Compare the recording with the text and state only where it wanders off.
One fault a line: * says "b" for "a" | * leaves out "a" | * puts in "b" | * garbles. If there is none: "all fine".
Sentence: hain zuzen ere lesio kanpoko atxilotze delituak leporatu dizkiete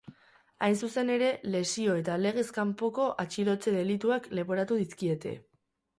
* puts in "eta legez"